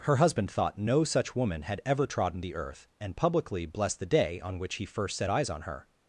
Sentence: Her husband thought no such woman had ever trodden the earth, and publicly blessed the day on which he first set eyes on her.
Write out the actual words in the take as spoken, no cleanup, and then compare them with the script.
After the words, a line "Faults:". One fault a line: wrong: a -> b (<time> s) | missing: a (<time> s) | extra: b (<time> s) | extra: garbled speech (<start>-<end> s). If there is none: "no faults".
Her husband thought no such woman had ever trodden the earth, and publicly blessed the day on which he first set eyes on her.
Faults:
no faults